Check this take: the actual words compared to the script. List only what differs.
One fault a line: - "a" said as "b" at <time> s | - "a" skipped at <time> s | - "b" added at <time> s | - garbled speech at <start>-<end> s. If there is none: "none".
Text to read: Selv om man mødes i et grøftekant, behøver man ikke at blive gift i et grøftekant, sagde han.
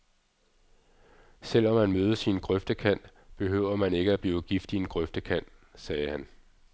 - "et" said as "en" at 2.3 s
- "et" said as "en" at 4.8 s